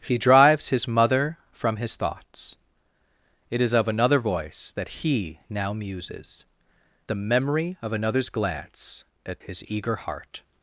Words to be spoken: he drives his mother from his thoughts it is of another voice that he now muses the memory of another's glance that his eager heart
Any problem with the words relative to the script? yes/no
no